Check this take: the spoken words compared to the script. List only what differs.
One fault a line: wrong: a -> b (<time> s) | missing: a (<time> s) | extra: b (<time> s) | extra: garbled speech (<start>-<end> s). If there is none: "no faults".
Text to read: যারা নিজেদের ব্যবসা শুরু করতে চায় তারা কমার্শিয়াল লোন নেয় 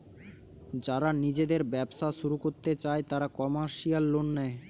no faults